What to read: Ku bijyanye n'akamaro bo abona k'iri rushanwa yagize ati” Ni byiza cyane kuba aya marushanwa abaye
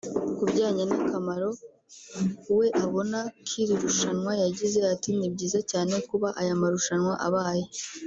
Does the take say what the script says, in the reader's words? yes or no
no